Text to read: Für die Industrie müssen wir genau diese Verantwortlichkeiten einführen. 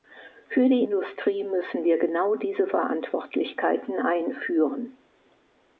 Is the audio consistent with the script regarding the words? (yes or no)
yes